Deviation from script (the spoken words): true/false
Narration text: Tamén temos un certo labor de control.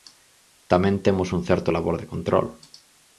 false